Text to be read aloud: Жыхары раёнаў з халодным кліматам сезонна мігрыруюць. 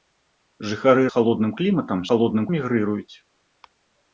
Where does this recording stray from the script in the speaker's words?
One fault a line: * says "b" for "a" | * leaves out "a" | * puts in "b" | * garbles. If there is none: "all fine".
* leaves out "раёнаў"
* says "халодным" for "сезонна"